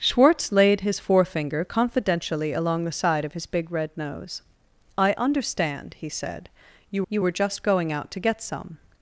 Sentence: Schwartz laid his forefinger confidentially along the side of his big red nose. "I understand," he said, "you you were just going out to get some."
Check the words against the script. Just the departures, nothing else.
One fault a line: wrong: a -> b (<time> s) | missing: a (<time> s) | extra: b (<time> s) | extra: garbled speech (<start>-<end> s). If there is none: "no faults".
no faults